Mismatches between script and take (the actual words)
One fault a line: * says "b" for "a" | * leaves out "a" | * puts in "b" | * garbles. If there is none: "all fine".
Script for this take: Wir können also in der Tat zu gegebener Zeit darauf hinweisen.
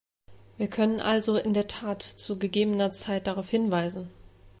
all fine